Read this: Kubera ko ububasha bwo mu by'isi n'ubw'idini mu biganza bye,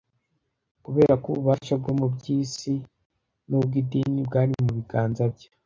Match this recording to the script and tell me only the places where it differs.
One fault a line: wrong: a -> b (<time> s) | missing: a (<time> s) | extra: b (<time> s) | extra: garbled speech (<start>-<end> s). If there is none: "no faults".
extra: bwari (4.3 s)